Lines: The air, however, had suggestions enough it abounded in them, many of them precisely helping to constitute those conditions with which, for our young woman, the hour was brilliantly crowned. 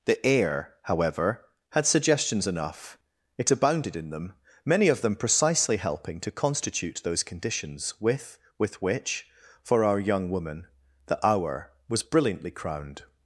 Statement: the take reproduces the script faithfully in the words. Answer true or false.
false